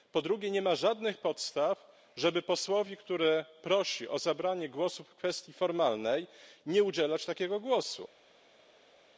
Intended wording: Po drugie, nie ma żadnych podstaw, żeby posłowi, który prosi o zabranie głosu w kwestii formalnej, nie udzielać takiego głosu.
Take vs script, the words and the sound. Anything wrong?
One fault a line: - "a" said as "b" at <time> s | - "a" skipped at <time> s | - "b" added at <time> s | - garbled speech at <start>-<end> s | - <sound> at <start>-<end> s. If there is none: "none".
none